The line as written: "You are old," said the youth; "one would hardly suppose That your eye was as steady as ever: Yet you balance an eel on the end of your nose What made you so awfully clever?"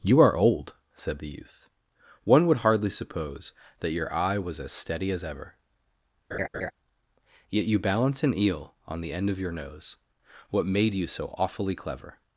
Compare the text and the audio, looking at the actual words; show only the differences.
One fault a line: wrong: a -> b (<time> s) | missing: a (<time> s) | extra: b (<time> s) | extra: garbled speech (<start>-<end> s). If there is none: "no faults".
no faults